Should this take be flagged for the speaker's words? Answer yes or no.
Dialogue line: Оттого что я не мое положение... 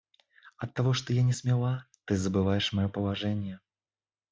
yes